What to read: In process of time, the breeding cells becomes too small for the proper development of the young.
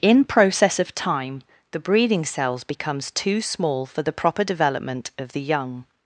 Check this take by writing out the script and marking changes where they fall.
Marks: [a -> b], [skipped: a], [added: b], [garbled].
In process of time, the breeding cells becomes too small for the proper development of the young.